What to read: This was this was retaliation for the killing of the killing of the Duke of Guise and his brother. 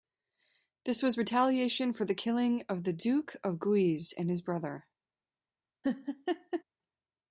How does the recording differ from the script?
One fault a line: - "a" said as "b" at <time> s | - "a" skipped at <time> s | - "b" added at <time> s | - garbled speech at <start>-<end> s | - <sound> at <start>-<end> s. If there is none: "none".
- "this was" skipped at 1.2 s
- "killing of the" skipped at 2.9 s
- laugh at 5.8-6.6 s